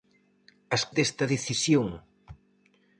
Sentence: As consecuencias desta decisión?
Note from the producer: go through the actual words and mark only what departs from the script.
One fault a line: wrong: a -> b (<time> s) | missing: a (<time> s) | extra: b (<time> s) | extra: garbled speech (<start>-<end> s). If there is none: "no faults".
missing: consecuencias (0.8 s)